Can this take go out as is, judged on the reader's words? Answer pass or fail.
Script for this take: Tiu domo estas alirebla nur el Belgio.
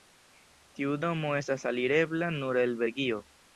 pass